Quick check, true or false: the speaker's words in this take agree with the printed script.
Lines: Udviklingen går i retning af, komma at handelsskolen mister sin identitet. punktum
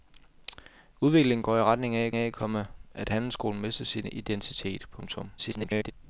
false